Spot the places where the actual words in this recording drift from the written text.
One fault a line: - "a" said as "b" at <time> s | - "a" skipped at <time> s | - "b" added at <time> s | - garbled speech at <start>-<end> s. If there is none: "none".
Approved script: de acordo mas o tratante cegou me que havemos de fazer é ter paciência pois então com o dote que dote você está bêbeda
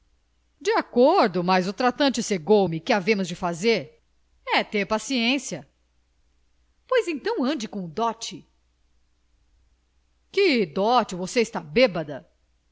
- "ande" added at 7.4 s